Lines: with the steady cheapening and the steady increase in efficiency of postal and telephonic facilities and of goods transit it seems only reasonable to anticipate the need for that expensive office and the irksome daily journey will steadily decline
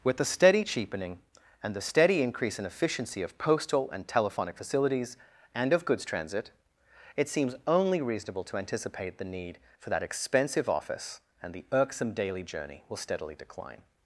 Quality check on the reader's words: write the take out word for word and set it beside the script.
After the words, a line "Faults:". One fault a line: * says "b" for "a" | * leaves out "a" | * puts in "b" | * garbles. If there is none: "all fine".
with the steady cheapening and the steady increase in efficiency of postal and telephonic facilities and of goods transit it seems only reasonable to anticipate the need for that expensive office and the irksome daily journey will steadily decline
Faults:
all fine